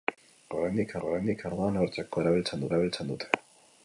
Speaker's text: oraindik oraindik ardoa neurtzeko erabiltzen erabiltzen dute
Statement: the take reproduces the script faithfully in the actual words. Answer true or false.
true